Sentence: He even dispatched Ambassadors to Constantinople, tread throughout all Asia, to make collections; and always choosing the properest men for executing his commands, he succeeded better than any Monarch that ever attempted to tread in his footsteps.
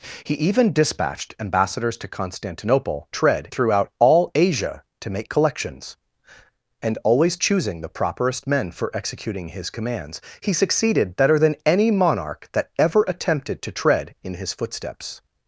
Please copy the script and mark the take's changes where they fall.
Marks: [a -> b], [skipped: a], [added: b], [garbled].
He even dispatched Ambassadors to Constantinople, tread throughout all Asia, to make collections; and always choosing the properest men for executing his commands, he succeeded better than any Monarch that ever attempted to tread in his footsteps.